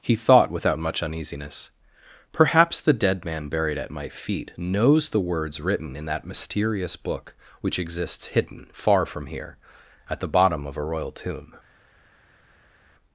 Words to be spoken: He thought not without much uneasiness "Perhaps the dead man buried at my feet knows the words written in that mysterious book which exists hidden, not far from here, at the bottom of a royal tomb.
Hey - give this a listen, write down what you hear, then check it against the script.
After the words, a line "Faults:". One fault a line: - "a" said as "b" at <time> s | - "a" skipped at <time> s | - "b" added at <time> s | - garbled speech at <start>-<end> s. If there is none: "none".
He thought without much uneasiness "Perhaps the dead man buried at my feet knows the words written in that mysterious book which exists hidden, far from here, at the bottom of a royal tomb.
Faults:
- "not" skipped at 0.5 s
- "not" skipped at 8.7 s